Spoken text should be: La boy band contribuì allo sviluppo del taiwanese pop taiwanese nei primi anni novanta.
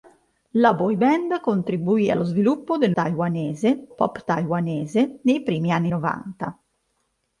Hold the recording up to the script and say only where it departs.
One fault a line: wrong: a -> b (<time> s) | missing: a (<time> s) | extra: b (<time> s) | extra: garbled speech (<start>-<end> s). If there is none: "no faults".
no faults